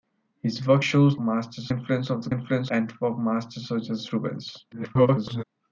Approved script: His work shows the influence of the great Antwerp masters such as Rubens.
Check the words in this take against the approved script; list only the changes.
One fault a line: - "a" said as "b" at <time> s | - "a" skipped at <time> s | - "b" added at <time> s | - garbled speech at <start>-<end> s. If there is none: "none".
- "the" said as "masters" at 1.2 s
- "great" said as "influence" at 2.3 s
- garbled speech at 4.7-5.4 s